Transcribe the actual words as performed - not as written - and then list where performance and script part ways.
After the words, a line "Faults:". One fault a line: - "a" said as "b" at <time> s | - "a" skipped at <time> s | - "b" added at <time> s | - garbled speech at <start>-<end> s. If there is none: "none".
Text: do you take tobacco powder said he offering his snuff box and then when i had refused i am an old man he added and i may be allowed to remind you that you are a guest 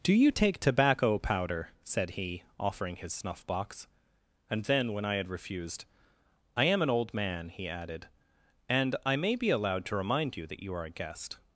do you take tobacco powder said he offering his snuff box and then when i had refused i am an old man he added and i may be allowed to remind you that you are a guest
Faults:
none